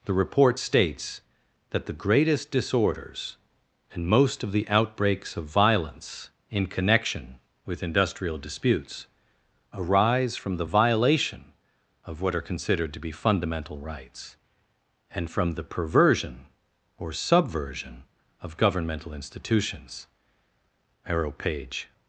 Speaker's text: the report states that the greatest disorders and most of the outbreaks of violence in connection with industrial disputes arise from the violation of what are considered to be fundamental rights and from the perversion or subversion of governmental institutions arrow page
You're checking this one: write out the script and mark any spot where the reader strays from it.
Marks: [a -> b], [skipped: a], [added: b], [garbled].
the report states that the greatest disorders and most of the outbreaks of violence in connection with industrial disputes arise from the violation of what are considered to be fundamental rights and from the perversion or subversion of governmental institutions arrow page